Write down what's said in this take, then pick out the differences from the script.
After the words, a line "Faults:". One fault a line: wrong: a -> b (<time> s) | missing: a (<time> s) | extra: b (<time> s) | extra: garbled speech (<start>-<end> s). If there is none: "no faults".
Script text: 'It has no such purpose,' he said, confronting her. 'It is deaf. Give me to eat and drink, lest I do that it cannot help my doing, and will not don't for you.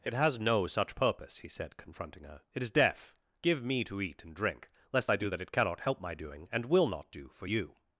'It has no such purpose,' he said, confronting her. 'It is deaf. Give me to eat and drink, lest I do that it cannot help my doing, and will not do for you.
Faults:
wrong: don't -> do (7.1 s)